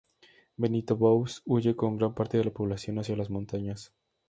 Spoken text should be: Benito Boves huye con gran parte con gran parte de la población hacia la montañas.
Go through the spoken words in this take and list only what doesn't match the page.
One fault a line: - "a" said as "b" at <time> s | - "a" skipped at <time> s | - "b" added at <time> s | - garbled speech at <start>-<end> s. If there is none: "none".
- "con gran parte" skipped at 2.4 s
- "la" said as "las" at 3.1 s